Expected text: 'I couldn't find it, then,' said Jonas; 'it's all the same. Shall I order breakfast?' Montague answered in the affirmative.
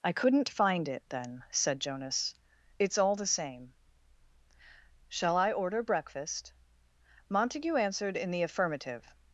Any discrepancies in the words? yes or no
no